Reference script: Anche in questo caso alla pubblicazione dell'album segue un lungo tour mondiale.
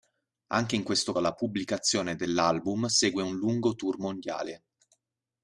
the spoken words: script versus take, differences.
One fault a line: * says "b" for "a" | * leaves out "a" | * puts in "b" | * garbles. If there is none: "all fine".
* leaves out "caso"